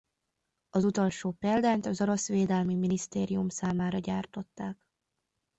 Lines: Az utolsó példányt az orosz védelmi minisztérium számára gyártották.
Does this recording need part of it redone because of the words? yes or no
no